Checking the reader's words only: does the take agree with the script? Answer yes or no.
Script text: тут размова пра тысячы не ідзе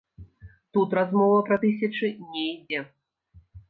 yes